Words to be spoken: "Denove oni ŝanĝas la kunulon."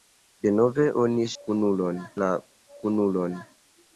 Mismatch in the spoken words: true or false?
true